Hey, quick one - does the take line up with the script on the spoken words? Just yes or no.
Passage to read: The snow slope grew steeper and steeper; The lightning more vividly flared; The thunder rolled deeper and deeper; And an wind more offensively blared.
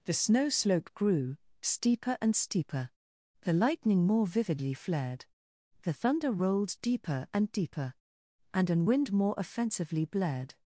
yes